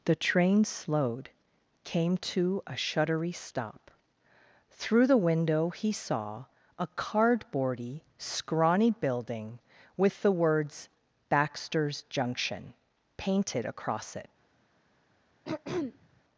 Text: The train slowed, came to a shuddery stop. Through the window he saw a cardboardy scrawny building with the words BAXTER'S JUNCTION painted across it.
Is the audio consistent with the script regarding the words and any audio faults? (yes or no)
no